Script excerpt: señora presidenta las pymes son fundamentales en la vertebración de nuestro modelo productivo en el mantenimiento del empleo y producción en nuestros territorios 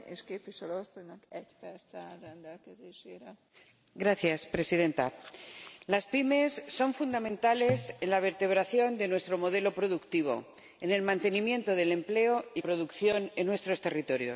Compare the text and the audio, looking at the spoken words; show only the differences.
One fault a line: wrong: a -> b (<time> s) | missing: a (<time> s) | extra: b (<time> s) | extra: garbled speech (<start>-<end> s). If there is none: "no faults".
no faults